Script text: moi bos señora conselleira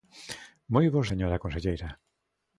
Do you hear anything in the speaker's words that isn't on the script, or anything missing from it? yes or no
no